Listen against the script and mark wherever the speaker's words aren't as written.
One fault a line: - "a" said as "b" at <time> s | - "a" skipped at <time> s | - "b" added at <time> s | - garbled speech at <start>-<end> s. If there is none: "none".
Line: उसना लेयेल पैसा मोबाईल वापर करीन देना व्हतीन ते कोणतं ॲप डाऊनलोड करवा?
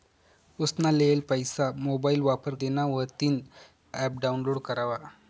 - "करीन" skipped at 2.5 s
- "ते कोणतं" skipped at 3.4 s